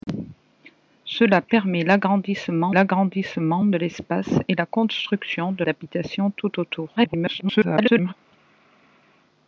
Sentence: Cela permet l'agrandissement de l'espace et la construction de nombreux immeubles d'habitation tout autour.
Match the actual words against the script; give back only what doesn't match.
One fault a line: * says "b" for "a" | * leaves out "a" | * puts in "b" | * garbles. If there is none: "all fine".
* puts in "l'agrandissement"
* leaves out "nombreux immeubles"
* garbles